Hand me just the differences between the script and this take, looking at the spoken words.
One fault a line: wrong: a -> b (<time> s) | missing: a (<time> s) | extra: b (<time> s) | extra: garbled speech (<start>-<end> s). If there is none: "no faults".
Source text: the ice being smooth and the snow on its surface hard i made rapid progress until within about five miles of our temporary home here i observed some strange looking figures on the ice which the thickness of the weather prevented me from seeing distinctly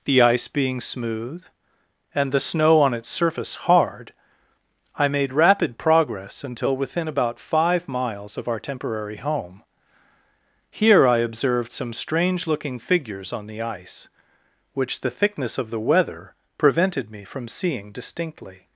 no faults